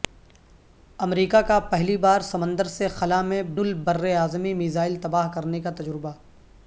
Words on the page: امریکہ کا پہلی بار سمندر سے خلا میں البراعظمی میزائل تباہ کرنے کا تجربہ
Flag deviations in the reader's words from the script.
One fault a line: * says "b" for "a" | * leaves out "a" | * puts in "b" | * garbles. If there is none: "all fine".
all fine